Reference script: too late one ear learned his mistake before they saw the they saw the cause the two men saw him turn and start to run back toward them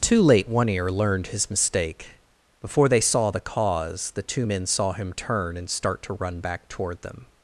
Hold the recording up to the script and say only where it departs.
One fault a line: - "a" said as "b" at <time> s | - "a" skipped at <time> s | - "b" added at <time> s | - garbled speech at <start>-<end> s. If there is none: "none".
- "they saw the" skipped at 3.4 s